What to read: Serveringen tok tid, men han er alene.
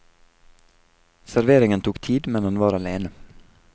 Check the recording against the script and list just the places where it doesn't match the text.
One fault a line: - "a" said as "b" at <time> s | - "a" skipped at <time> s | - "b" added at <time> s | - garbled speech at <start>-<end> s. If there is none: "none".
- "er" said as "var" at 2.6 s